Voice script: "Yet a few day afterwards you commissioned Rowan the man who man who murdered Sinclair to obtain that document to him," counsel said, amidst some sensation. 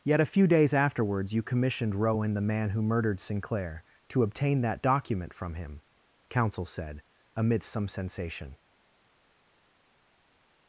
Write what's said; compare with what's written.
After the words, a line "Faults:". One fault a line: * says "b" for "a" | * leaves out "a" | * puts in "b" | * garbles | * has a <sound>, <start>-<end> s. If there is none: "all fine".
"Yet a few days afterwards you commissioned Rowan the man who murdered Sinclair to obtain that document from him," counsel said, amidst some sensation.
Faults:
* says "days" for "day"
* leaves out "man who"
* says "from" for "to"